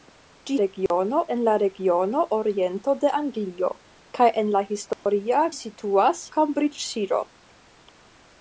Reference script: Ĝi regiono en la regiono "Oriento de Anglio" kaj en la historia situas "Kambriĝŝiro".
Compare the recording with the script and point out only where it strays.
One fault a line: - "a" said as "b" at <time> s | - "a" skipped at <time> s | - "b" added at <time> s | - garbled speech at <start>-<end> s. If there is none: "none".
none